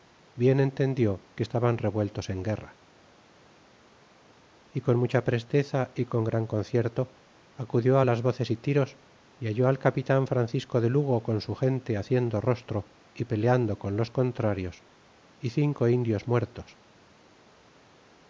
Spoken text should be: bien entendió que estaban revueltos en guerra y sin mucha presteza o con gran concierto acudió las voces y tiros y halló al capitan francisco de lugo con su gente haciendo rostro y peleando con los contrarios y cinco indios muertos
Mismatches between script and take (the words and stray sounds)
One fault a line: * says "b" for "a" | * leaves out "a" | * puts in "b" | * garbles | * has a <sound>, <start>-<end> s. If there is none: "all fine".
* says "con" for "sin"
* says "y" for "o"